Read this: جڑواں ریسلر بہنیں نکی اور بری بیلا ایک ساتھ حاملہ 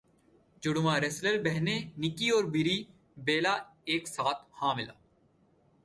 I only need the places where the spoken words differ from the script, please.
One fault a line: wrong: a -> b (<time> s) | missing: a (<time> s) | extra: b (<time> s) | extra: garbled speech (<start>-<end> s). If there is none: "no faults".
no faults